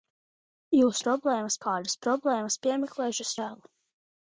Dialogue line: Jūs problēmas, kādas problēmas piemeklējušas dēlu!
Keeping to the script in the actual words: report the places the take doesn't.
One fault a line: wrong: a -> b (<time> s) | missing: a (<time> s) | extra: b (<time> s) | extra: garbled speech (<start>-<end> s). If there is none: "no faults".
no faults